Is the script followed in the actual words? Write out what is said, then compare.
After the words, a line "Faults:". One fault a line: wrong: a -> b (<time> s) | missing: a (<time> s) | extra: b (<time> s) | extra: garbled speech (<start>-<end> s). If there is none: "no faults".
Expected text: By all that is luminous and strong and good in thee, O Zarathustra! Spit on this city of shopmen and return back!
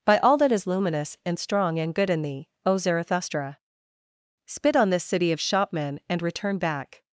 By all that is luminous and strong and good in thee, O Zarathustra! Spit on this city of shopmen and return back!
Faults:
no faults